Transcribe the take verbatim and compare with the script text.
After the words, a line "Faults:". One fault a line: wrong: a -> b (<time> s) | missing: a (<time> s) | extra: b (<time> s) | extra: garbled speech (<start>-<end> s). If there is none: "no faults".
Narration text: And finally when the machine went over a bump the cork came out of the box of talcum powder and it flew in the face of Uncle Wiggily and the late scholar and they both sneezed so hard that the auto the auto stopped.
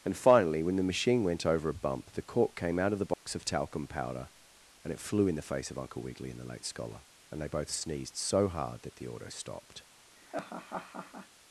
And finally when the machine went over a bump the cork came out of the box of talcum powder and it flew in the face of Uncle Wiggily and the late scholar and they both sneezed so hard that the auto stopped.
Faults:
missing: the auto (9.3 s)